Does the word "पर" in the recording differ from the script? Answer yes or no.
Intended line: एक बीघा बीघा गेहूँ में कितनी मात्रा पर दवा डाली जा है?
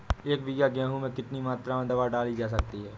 yes